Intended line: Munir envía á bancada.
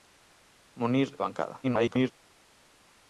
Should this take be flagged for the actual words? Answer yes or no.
yes